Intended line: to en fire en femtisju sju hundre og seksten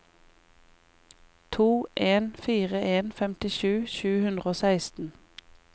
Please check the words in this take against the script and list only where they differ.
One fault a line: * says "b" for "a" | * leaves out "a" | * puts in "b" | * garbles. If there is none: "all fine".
all fine